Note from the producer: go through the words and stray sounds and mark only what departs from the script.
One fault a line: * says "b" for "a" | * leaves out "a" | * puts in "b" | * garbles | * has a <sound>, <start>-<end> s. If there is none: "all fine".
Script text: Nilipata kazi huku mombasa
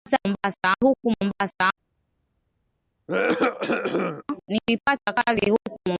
* says "mombasa" for "kazi"
* has a cough, 3.1-4.2 s